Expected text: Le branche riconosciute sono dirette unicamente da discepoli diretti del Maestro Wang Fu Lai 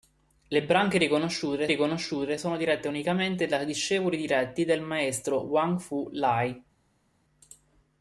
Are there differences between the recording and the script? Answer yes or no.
yes